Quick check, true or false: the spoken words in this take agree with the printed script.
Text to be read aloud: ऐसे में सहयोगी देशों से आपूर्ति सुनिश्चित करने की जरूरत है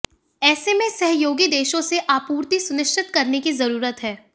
true